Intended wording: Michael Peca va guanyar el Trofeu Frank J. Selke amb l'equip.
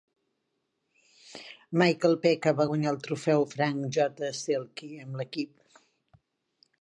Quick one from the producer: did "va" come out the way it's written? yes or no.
yes